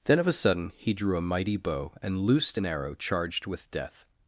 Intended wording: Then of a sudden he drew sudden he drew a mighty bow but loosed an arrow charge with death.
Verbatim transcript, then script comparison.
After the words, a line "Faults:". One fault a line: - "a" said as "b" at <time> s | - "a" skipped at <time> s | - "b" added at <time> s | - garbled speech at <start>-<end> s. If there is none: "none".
Then of a sudden he drew a mighty bow and loosed an arrow charged with death.
Faults:
- "sudden he drew" skipped at 1.1 s
- "but" said as "and" at 2.0 s
- "charge" said as "charged" at 2.9 s